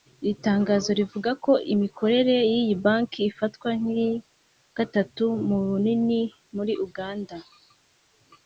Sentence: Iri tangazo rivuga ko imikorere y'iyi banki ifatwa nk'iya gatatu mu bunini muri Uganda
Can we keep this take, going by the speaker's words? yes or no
yes